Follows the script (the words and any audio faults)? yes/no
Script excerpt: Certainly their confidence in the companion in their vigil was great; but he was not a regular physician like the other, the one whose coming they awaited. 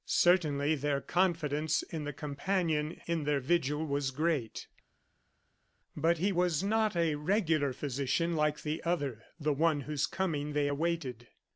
yes